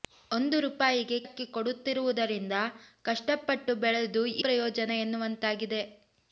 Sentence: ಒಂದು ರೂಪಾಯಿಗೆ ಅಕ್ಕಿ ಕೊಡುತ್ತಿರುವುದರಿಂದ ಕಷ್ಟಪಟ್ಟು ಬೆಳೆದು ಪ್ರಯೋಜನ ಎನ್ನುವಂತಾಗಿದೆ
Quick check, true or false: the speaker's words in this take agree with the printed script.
true